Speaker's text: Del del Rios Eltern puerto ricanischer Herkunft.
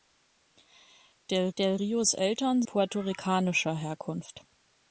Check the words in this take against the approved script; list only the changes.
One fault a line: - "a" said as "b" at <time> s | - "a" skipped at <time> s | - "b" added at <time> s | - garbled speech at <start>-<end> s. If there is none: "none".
none